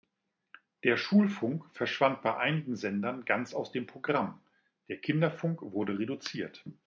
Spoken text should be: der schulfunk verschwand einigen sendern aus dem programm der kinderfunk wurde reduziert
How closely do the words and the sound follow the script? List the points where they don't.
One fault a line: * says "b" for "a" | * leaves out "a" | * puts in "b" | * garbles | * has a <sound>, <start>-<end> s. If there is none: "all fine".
* puts in "bei"
* puts in "ganz"